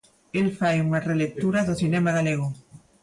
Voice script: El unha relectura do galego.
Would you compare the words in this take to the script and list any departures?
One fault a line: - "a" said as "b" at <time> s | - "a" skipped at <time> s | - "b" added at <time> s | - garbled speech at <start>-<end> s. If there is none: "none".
- "fai" added at 0.6 s
- "cinema" added at 1.8 s